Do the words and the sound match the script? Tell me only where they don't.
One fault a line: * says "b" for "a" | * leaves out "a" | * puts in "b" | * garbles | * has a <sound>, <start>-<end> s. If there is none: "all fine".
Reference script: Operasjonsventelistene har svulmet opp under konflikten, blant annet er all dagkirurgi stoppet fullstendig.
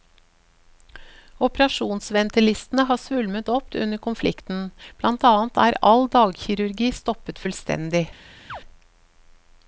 * has a chirp, 8.5-8.6 s